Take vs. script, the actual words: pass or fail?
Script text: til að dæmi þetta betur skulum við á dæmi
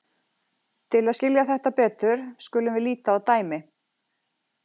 fail